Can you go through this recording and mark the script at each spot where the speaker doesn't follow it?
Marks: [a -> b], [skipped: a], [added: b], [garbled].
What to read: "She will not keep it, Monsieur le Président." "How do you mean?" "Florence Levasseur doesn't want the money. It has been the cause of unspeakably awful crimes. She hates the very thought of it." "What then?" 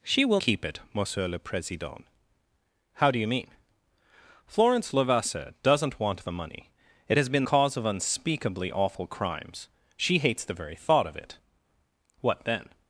"She will [skipped: not] keep it, Monsieur le Président." "How do you mean?" "Florence Levasseur doesn't want the money. It has been [skipped: the] cause of unspeakably awful crimes. She hates the very thought of it." "What then?"